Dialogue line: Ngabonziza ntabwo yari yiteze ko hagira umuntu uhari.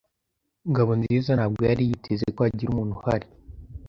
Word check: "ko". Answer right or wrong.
right